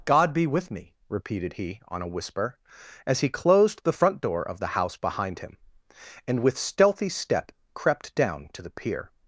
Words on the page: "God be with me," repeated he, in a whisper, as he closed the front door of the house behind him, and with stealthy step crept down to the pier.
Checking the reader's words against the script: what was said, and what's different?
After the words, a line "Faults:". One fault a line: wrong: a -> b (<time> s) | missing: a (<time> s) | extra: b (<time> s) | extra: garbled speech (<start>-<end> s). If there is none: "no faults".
"God be with me," repeated he, on a whisper, as he closed the front door of the house behind him, and with stealthy step crept down to the pier.
Faults:
wrong: in -> on (1.9 s)